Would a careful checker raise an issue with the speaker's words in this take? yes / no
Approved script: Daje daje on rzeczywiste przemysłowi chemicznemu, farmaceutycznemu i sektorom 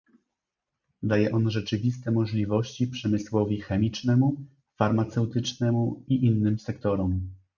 yes